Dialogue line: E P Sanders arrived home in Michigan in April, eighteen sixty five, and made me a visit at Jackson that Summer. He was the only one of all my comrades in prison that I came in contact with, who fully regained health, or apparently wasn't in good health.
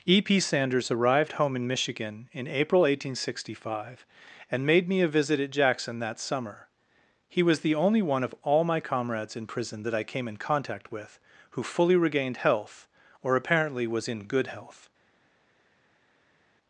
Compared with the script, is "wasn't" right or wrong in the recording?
wrong